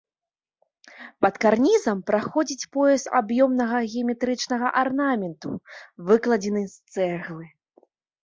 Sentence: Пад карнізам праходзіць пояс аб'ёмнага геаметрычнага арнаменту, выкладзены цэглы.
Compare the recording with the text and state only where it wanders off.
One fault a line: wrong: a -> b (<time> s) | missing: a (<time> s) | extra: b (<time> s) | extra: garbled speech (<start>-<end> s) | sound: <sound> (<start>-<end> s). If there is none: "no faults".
extra: з (6.7 s)